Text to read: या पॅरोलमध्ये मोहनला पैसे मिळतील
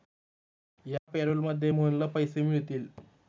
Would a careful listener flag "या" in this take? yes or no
no